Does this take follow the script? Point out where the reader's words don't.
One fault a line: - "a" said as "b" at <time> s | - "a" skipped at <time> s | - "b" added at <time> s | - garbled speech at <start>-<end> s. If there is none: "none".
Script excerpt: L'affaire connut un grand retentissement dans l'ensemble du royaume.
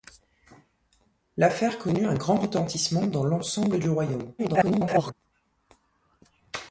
- garbled speech at 4.4-5.1 s